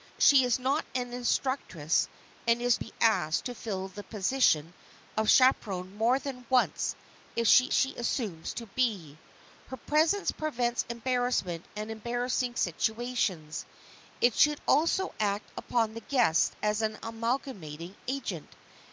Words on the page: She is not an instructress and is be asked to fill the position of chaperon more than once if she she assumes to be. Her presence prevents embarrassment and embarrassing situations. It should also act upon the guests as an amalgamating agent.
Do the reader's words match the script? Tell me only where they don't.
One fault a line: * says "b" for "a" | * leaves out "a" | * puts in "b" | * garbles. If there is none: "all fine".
all fine